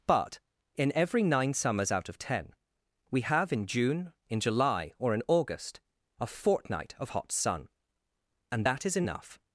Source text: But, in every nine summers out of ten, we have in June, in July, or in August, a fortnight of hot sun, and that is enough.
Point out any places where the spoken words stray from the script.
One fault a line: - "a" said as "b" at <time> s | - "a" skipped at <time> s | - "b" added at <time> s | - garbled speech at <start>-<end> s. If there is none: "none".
none